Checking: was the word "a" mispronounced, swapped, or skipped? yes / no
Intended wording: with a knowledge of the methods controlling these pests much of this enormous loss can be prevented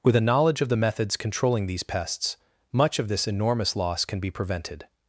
no